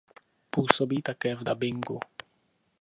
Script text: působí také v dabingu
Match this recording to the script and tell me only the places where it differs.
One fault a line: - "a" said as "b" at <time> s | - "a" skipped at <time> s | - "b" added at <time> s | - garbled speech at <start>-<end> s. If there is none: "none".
none